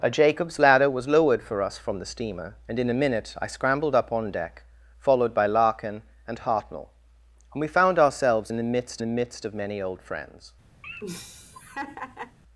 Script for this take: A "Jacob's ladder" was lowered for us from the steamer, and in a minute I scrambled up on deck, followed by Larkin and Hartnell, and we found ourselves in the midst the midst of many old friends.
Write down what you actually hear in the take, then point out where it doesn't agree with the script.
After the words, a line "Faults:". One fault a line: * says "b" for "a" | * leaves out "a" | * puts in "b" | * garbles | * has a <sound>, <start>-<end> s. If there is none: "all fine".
A "Jacob's ladder" was lowered for us from the steamer, and in a minute I scrambled up on deck, followed by Larkin and Hartnell, and we found ourselves in the midst the midst of many old friends.
Faults:
* has a laugh, 10.8-12.4 s